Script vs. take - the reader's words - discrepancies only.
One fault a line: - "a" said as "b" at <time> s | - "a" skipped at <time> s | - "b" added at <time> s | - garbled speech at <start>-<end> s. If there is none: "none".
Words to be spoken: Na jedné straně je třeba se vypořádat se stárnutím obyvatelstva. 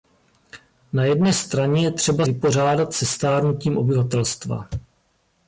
- "se" skipped at 2.2 s